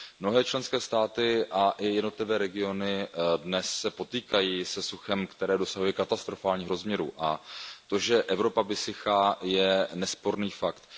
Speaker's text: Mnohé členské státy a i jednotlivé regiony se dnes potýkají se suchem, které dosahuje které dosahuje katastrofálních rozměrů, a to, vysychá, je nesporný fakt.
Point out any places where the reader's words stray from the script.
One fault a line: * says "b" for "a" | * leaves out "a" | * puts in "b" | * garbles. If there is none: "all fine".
* leaves out "které dosahuje"
* puts in "že Evropa"